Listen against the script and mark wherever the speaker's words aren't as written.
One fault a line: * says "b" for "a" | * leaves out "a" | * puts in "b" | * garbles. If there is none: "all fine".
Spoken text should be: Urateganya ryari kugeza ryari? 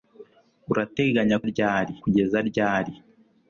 all fine